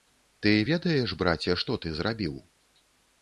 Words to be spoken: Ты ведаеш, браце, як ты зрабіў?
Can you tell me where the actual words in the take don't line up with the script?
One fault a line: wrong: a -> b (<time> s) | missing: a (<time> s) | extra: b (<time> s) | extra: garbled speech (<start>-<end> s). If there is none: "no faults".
wrong: як -> што (1.6 s)